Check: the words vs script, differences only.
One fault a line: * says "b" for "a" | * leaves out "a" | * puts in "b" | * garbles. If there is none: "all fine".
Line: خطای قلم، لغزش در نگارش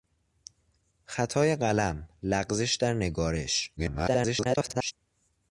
* garbles